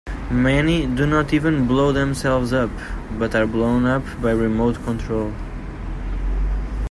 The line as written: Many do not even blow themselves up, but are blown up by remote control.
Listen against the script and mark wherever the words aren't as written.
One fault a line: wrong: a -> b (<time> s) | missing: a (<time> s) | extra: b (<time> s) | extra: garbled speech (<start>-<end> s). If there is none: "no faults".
no faults